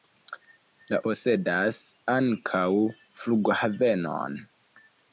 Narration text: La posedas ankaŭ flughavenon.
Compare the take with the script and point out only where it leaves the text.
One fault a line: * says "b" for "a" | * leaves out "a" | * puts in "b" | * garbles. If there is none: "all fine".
all fine